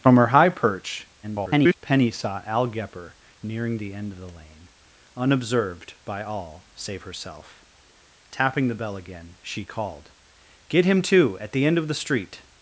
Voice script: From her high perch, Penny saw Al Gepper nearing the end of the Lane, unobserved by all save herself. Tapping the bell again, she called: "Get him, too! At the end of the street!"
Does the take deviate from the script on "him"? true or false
false